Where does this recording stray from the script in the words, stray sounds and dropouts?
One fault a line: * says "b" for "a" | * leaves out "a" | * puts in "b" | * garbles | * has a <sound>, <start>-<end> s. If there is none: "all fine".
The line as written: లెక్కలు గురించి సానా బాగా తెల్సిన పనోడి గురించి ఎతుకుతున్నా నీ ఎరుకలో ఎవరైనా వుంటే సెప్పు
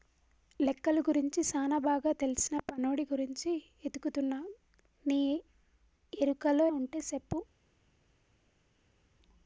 * leaves out "ఎవరైనా"